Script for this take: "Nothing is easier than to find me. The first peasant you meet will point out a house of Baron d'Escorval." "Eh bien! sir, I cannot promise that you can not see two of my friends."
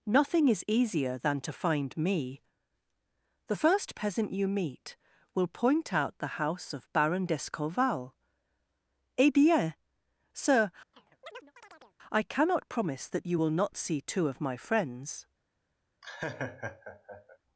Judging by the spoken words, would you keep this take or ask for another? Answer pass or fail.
fail